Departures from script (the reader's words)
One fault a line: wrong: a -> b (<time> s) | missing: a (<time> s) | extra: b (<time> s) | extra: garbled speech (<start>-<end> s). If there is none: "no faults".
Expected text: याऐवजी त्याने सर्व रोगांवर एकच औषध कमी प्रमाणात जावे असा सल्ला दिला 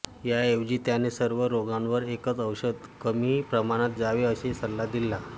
no faults